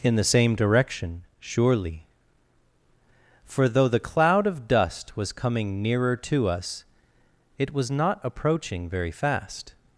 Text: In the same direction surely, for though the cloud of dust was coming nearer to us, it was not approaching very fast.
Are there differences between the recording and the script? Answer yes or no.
no